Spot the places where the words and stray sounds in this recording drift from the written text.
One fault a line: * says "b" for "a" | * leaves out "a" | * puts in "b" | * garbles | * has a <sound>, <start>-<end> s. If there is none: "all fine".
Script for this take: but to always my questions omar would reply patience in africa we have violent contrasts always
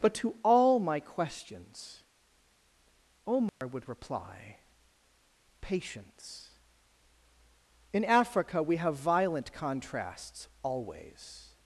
* says "all" for "always"
* has a dropout, 3.5-3.6 s